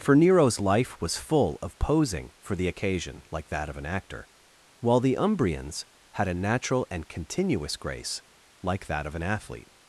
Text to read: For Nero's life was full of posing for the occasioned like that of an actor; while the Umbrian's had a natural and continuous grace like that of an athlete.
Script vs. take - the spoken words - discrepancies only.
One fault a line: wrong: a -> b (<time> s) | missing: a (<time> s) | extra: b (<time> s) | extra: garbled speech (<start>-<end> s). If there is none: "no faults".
wrong: occasioned -> occasion (2.7 s)